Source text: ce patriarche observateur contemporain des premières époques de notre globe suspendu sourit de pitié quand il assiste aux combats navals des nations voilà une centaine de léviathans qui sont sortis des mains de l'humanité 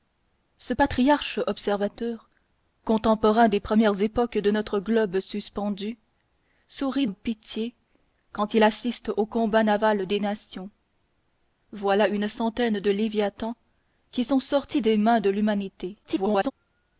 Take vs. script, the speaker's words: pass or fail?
fail